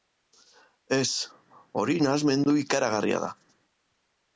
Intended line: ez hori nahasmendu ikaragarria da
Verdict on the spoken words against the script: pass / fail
pass